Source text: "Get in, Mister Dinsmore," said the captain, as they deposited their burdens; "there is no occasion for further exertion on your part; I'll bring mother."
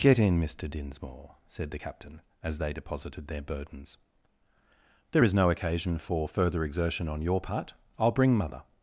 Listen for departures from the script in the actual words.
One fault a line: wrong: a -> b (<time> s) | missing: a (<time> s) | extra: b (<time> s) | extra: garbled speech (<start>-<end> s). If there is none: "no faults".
no faults